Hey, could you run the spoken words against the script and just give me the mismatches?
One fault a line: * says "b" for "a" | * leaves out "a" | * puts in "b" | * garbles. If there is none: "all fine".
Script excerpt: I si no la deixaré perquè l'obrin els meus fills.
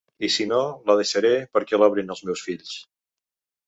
all fine